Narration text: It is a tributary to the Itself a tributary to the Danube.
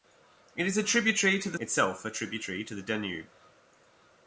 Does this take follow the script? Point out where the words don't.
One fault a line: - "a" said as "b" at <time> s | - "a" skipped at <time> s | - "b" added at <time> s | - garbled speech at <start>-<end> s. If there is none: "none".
none